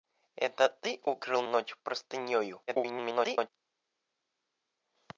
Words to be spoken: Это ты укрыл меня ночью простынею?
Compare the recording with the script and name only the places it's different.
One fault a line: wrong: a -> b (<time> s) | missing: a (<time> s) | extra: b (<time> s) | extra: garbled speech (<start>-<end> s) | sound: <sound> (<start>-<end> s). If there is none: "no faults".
missing: меня (1.4 s)
extra: garbled speech (2.7-3.5 s)